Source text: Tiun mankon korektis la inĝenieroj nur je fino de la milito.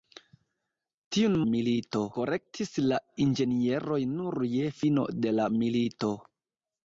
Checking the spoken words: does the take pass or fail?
fail